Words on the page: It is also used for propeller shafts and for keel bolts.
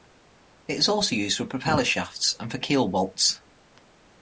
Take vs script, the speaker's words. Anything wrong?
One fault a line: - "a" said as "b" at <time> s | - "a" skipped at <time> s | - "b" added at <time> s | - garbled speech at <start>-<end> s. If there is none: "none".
none